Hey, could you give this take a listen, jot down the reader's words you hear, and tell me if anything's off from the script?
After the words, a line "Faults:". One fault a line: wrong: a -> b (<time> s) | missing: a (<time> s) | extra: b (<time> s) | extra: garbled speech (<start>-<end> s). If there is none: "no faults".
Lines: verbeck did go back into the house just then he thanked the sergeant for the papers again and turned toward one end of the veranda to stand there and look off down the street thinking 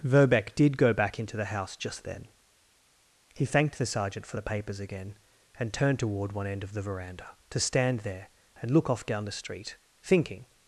verbeck did go back into the house just then he thanked the sergeant for the papers again and turned toward one end of the veranda to stand there and look off down the street thinking
Faults:
no faults